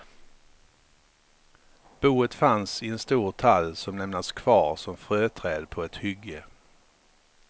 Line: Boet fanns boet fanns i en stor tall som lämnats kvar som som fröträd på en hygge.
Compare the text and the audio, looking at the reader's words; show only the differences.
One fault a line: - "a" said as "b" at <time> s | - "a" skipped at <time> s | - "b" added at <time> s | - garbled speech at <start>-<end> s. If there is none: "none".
- "boet fanns" skipped at 2.8 s
- "som" skipped at 5.0 s
- "en" said as "ett" at 5.8 s